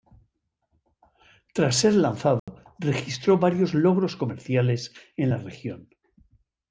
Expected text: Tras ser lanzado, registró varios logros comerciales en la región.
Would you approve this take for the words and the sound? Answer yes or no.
no